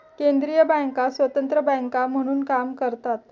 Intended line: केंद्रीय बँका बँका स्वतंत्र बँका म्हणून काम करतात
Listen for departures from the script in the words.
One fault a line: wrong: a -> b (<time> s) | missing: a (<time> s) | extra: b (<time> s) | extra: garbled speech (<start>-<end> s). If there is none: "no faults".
missing: बँका (1.1 s)